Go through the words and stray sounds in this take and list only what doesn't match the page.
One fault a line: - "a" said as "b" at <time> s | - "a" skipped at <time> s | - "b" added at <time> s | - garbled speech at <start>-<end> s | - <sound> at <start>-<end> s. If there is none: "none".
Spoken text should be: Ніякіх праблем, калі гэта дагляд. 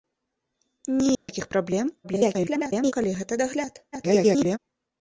- dropout at 1.1-1.3 s
- garbled speech at 2.0-2.9 s
- garbled speech at 3.9-4.6 s